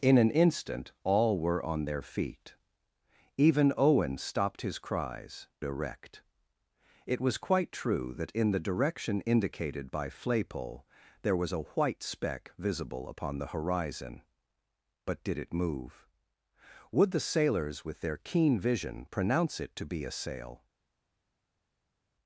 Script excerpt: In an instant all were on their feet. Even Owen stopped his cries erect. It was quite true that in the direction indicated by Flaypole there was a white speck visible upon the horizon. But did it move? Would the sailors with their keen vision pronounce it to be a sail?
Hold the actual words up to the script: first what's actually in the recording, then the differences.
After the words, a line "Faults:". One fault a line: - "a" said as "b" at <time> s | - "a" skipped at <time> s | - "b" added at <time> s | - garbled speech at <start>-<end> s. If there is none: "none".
In an instant all were on their feet. Even Owen stopped his cries erect. It was quite true that in the direction indicated by Flaypole there was a white speck visible upon the horizon. But did it move? Would the sailors with their keen vision pronounce it to be a sail?
Faults:
none